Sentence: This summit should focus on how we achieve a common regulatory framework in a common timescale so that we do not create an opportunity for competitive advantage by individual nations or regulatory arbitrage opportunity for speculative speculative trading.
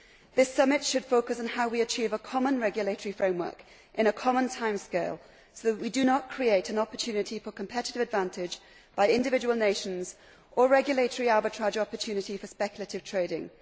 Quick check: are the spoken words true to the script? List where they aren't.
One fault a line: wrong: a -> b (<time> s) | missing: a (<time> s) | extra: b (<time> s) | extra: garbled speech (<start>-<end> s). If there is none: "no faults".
missing: speculative (13.1 s)